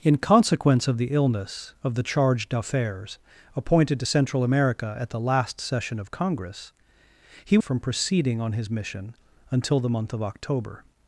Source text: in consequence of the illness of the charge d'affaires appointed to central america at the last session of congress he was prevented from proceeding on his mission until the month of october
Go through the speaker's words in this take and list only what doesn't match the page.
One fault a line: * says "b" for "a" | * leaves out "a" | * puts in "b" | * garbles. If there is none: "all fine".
* leaves out "was prevented"